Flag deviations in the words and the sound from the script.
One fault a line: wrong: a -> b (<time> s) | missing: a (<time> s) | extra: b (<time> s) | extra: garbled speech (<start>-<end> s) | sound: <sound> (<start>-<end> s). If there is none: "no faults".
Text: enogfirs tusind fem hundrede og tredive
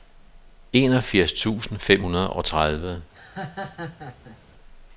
sound: laugh (3.1-4.4 s)